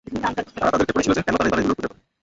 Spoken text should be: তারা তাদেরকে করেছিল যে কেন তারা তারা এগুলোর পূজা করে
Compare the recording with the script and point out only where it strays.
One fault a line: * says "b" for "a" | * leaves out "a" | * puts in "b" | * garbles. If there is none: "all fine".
all fine